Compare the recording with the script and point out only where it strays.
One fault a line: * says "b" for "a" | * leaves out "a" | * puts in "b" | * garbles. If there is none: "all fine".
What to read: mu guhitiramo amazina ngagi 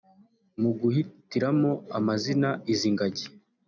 * puts in "izi"